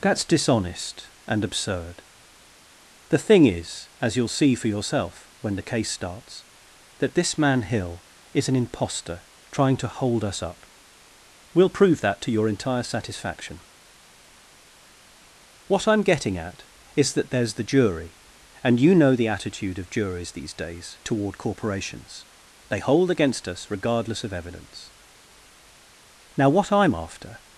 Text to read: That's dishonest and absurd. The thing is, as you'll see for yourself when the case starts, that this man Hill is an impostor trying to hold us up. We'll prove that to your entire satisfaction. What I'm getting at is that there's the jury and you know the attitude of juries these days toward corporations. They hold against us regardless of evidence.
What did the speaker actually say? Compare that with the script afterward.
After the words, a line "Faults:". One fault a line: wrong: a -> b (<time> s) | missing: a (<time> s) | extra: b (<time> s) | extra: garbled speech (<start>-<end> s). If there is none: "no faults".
That's dishonest and absurd. The thing is, as you'll see for yourself when the case starts, that this man Hill is an impostor trying to hold us up. We'll prove that to your entire satisfaction. What I'm getting at is that there's the jury and you know the attitude of juries these days toward corporations. They hold against us regardless of evidence. Now what I'm after
Faults:
extra: Now what I'm after (26.4 s)